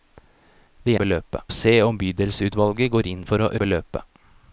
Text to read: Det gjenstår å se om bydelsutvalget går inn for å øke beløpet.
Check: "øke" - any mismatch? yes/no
yes